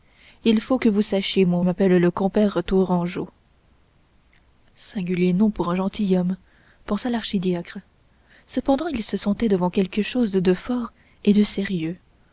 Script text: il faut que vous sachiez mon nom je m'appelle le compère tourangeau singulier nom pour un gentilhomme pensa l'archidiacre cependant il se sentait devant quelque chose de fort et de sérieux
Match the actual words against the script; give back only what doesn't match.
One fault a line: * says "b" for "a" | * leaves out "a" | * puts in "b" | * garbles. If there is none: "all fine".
* leaves out "nom je"